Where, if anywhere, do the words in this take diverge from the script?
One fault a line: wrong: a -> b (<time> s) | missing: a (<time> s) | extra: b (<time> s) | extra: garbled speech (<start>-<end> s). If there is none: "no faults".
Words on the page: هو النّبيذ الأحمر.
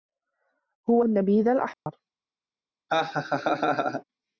no faults